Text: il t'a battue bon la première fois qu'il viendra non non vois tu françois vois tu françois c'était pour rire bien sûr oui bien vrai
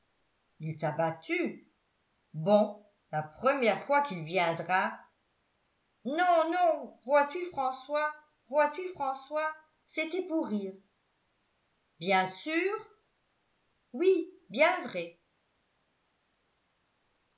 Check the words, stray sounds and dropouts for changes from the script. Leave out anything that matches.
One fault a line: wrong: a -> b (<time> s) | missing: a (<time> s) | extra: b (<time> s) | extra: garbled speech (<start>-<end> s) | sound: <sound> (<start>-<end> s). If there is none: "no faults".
no faults